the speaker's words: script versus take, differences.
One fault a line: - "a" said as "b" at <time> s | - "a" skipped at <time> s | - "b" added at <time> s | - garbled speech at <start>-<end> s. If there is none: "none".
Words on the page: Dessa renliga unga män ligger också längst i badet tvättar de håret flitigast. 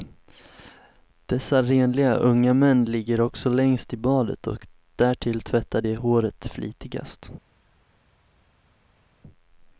- "och därtill" added at 4.5 s